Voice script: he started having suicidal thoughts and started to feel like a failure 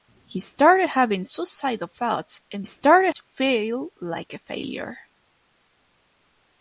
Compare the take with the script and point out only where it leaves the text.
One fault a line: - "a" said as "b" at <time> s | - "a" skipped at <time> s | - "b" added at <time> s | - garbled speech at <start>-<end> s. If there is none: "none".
none